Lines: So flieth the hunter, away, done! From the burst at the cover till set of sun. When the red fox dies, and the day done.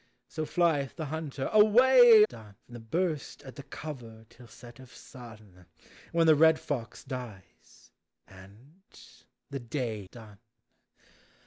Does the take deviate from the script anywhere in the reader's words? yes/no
no